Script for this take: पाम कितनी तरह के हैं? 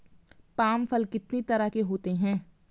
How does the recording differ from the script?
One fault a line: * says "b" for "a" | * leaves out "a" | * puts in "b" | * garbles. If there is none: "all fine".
* puts in "फल"
* puts in "होते"